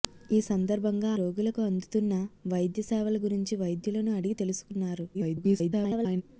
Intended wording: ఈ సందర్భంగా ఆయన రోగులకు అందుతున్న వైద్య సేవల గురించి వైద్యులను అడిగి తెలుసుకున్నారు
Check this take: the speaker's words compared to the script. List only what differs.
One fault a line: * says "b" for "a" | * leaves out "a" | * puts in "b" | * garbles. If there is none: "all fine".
* leaves out "ఆయన"
* garbles